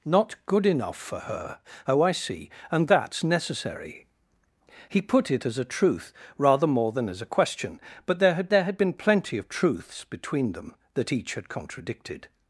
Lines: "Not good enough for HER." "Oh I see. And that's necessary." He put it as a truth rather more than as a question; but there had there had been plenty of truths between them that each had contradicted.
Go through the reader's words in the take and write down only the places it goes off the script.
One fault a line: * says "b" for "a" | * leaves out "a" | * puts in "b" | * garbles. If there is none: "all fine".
all fine